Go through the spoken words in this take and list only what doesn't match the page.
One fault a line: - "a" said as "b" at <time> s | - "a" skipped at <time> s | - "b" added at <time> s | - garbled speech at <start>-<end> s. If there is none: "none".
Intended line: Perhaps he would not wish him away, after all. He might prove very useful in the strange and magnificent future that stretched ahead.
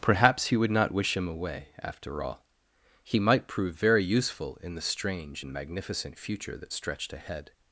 none